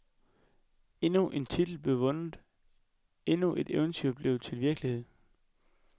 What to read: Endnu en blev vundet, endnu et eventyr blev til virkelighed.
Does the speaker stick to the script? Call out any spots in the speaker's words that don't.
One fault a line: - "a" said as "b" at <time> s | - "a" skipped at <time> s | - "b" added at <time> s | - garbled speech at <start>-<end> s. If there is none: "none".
- "titel" added at 1.4 s